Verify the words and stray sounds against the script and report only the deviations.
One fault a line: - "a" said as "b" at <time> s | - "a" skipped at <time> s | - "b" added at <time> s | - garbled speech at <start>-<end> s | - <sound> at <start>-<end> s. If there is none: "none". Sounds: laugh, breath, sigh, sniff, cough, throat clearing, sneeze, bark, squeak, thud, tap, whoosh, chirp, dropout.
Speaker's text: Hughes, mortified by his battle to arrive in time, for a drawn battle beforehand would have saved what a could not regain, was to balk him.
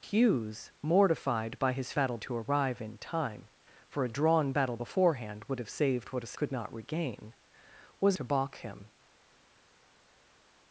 none